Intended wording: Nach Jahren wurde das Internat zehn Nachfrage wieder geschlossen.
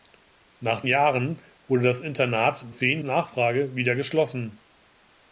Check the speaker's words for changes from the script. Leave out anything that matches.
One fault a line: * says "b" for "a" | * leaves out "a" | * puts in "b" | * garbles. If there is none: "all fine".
all fine